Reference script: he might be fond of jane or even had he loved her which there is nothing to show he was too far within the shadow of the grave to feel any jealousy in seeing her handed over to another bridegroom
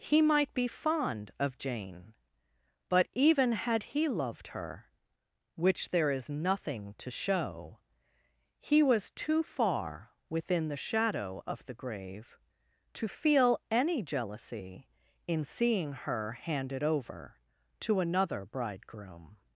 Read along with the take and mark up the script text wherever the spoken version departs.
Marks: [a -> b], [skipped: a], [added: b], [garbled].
he might be fond of jane [or -> but] even had he loved her which there is nothing to show he was too far within the shadow of the grave to feel any jealousy in seeing her handed over to another bridegroom